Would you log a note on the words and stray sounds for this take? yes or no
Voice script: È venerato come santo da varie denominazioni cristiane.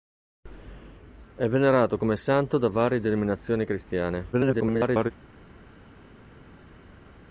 yes